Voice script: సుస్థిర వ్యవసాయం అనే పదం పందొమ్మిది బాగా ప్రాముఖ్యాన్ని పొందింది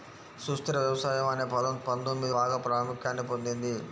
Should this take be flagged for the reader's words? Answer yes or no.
no